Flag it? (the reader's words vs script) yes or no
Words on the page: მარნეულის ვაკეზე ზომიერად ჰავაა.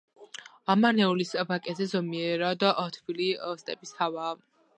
yes